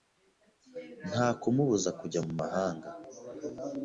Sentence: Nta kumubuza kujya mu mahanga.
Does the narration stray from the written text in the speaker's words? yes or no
no